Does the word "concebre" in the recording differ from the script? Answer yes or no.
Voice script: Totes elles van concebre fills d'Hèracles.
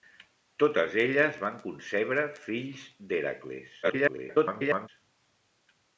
no